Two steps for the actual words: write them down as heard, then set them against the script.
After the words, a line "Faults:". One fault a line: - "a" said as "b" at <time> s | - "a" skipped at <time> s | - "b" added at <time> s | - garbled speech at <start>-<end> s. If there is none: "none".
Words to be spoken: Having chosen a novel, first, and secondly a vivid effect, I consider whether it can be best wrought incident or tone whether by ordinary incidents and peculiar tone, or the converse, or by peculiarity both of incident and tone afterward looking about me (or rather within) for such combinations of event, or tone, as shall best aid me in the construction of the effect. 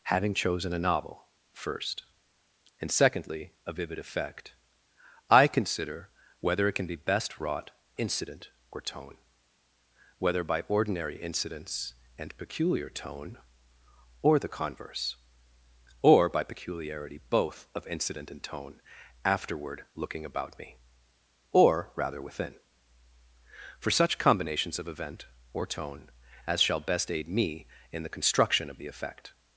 Having chosen a novel, first, and secondly a vivid effect, I consider whether it can be best wrought incident or tone whether by ordinary incidents and peculiar tone, or the converse, or by peculiarity both of incident and tone afterward looking about me (or rather within) for such combinations of event, or tone, as shall best aid me in the construction of the effect.
Faults:
none